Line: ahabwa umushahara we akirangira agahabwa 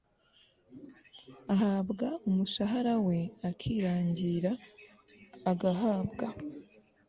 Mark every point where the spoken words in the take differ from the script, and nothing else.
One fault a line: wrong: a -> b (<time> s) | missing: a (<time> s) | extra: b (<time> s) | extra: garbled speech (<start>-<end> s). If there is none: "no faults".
no faults